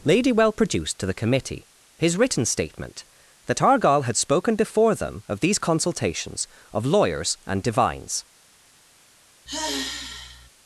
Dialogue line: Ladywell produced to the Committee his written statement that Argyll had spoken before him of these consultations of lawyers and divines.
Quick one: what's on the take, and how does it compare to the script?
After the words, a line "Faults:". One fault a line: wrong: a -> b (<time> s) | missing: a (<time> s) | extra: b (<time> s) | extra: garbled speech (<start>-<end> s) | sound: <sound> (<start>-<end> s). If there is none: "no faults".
Ladywell produced to the Committee his written statement that Argyll had spoken before them of these consultations of lawyers and divines.
Faults:
wrong: him -> them (5.0 s)
sound: sigh (9.5-10.5 s)